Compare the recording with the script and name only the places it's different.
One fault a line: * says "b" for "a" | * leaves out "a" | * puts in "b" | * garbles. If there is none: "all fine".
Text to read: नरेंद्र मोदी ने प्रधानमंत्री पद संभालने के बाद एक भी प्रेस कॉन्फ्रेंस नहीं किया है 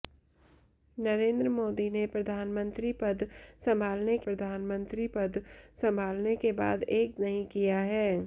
* puts in "प्रधानमंत्री पद संभालने"
* leaves out "भी प्रेस कॉन्फ्रेंस"